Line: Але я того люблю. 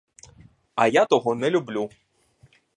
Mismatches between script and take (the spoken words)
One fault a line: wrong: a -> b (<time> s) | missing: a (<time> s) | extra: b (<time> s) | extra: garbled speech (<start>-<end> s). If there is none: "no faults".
wrong: Але -> А (0.7 s)
extra: не (1.3 s)